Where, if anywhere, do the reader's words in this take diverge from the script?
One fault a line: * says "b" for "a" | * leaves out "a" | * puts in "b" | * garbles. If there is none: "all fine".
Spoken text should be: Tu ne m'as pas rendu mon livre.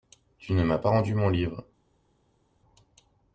all fine